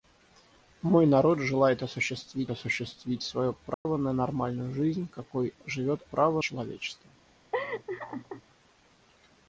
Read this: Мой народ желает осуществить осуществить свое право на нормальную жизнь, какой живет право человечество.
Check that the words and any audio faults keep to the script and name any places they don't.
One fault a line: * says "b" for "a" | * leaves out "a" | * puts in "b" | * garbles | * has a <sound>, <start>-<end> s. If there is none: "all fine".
* has a dropout, 3.7-3.9 s
* has a laugh, 7.5-8.4 s